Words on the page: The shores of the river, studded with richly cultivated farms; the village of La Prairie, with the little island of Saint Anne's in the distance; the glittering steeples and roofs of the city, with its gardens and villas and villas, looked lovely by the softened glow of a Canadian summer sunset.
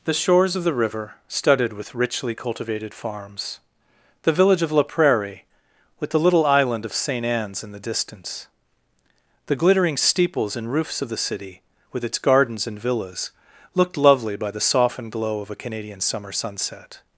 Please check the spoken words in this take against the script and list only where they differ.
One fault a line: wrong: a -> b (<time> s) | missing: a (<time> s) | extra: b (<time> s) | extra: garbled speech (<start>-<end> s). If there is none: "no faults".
missing: and villas (13.3 s)